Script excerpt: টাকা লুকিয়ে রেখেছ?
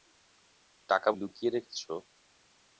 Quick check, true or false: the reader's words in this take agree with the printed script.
true